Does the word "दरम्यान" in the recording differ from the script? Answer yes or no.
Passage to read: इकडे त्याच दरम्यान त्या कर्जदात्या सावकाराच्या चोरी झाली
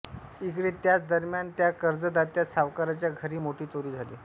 no